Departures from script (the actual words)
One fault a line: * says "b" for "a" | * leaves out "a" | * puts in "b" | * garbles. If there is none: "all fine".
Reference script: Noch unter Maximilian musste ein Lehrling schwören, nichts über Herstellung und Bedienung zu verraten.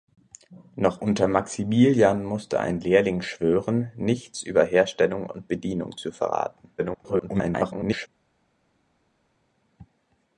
* garbles